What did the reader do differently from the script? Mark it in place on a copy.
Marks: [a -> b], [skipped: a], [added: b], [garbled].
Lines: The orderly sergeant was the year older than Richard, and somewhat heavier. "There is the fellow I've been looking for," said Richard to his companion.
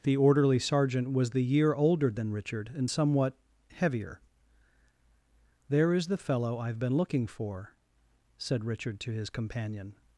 The orderly sergeant was the year older than Richard, and somewhat heavier. "There is the fellow I've been looking for," said Richard to his companion.